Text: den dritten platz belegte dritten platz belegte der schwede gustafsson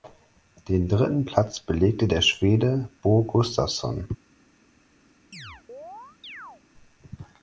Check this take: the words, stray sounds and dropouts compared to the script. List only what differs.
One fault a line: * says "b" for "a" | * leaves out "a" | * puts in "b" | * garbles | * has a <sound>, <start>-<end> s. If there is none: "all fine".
* leaves out "dritten platz belegte"
* puts in "bo"
* has a chirp, 5.3-6.6 s